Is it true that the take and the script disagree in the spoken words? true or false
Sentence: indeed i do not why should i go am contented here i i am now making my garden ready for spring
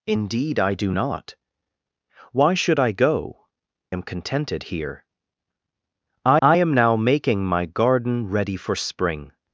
false